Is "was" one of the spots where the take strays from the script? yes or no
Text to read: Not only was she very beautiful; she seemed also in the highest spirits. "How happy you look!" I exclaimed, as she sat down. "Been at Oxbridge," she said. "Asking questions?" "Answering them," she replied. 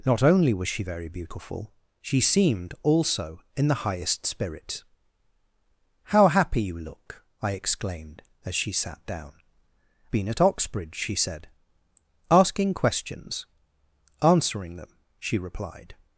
no